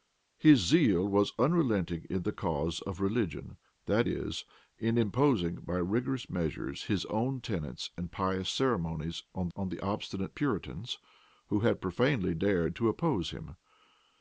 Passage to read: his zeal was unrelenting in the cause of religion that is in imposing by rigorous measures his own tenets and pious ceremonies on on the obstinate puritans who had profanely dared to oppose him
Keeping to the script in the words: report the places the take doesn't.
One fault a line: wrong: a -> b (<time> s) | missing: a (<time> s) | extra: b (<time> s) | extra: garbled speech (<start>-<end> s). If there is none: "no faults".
no faults